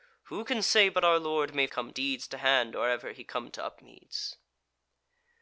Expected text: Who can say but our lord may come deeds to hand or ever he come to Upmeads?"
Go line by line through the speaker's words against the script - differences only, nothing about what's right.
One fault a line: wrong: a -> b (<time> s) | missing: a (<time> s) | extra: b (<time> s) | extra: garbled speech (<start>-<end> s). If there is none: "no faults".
no faults